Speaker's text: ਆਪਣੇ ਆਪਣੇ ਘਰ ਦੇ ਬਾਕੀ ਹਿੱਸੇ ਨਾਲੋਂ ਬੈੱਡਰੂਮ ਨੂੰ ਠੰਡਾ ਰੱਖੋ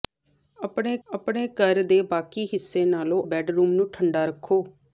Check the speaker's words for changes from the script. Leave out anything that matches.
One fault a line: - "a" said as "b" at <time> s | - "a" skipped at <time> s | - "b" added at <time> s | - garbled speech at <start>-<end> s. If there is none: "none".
none